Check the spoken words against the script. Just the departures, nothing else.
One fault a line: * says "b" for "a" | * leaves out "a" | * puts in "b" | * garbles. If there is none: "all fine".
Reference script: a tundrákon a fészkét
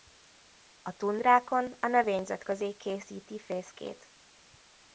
* puts in "növényzet közé készíti"